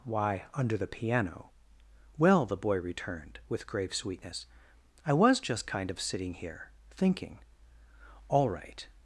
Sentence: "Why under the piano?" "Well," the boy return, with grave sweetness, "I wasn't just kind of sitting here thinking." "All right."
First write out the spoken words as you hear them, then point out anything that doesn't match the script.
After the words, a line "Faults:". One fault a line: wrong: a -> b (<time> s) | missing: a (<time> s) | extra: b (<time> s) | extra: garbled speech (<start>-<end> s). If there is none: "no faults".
"Why under the piano?" "Well," the boy returned, with grave sweetness, "I was just kind of sitting here thinking." "All right."
Faults:
wrong: return -> returned (2.8 s)
wrong: wasn't -> was (5.1 s)